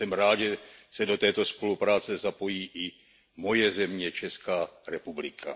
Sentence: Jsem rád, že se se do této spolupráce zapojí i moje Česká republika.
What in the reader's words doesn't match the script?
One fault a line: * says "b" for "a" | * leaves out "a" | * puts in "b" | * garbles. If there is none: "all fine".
* leaves out "se"
* puts in "země"